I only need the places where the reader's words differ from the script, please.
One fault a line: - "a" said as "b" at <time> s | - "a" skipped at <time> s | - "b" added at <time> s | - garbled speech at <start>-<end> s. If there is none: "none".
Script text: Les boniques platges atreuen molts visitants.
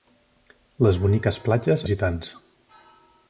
- "atreuen molts" skipped at 1.9 s